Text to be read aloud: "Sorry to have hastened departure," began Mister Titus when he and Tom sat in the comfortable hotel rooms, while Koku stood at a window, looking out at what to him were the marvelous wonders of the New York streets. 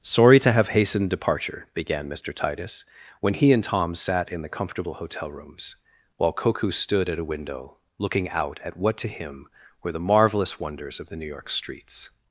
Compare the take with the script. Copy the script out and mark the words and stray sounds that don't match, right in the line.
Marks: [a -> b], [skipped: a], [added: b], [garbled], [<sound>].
"Sorry to have hastened departure," began Mister Titus when he and Tom sat in the comfortable hotel rooms, while Koku stood at a window, looking out at what to him were the marvelous wonders of the New York streets.